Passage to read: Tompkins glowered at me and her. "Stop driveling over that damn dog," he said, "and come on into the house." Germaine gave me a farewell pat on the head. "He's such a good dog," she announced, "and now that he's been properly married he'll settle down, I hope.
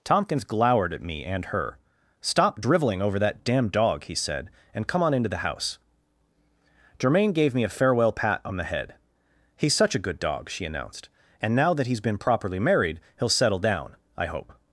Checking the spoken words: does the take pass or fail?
pass